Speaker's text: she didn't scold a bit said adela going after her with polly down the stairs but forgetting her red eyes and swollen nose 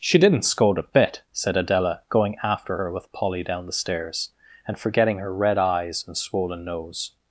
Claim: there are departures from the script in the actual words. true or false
true